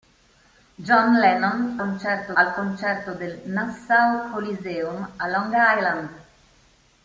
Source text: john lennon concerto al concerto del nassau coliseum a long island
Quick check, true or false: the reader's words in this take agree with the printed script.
true